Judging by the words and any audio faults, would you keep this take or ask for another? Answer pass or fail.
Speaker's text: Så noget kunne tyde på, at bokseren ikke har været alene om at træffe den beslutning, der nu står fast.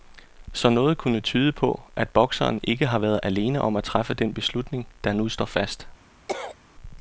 fail